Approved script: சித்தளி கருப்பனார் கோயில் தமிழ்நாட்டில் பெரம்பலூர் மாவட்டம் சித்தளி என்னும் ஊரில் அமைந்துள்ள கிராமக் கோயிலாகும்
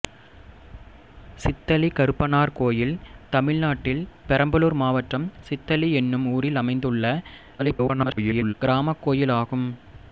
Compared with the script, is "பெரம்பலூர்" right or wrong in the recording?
right